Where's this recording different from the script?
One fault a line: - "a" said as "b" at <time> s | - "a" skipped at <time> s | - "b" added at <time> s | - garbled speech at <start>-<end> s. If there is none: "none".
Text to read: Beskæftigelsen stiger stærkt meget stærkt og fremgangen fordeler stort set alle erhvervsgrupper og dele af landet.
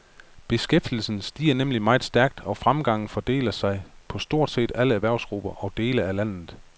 - "stærkt" said as "nemlig" at 1.5 s
- "sig på" added at 3.5 s